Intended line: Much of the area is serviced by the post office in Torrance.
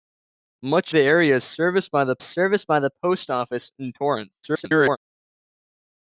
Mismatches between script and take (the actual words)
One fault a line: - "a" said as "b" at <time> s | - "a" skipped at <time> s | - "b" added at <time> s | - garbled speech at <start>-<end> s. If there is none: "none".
- "of" skipped at 0.9 s
- "serviced by the" added at 2.2 s
- garbled speech at 4.4-5.0 s